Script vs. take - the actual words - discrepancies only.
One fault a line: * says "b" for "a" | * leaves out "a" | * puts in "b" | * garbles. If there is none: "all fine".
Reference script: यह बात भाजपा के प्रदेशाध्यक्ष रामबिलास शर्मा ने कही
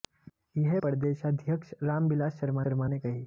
* leaves out "बात भाजपा के"
* puts in "शर्मा"